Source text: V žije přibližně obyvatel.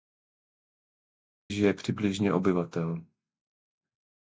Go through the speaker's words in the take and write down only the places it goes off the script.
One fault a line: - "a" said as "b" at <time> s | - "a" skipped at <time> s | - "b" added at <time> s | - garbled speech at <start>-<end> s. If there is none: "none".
none